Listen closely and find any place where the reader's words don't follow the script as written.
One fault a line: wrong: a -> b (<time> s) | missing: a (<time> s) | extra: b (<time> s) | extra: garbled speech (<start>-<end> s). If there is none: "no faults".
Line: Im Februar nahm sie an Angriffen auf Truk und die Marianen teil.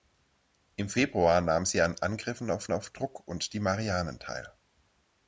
extra: auf (2.7 s)